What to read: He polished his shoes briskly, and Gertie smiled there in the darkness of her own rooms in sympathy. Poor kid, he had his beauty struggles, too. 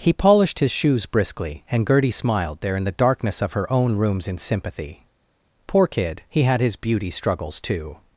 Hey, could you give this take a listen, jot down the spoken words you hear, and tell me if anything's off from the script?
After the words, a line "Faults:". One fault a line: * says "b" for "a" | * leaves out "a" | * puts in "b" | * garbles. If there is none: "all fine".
He polished his shoes briskly, and Gertie smiled there in the darkness of her own rooms in sympathy. Poor kid, he had his beauty struggles, too.
Faults:
all fine